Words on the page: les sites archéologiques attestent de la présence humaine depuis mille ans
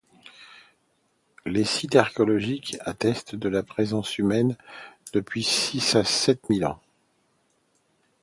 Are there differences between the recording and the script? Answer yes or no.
yes